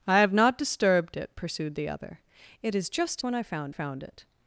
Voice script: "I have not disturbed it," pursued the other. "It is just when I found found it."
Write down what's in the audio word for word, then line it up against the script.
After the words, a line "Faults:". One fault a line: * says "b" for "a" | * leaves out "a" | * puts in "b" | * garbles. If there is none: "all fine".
"I have not disturbed it," pursued the other. "It is just when I found found it."
Faults:
all fine